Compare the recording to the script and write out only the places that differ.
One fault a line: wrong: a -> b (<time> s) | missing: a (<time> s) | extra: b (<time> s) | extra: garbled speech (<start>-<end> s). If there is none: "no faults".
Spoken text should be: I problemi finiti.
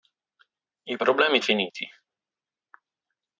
no faults